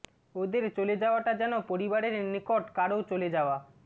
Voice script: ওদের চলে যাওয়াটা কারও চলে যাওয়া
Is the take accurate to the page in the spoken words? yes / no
no